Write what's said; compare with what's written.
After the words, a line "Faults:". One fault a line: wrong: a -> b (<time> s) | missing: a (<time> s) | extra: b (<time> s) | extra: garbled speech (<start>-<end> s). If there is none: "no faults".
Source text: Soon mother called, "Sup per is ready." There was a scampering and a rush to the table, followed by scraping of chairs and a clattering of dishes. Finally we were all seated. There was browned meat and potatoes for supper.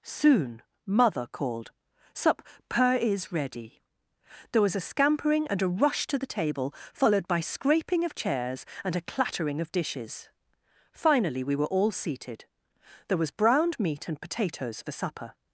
Soon mother called, "Sup per is ready." There was a scampering and a rush to the table, followed by scraping of chairs and a clattering of dishes. Finally we were all seated. There was browned meat and potatoes for supper.
Faults:
no faults